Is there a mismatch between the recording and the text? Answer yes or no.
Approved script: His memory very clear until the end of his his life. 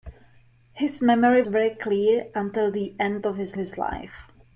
no